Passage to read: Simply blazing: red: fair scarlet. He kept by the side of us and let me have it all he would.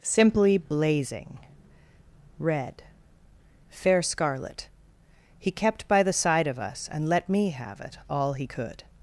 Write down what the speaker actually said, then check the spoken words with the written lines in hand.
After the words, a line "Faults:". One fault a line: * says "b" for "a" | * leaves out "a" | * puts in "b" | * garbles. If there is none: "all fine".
Simply blazing: red: fair scarlet. He kept by the side of us and let me have it all he could.
Faults:
* says "could" for "would"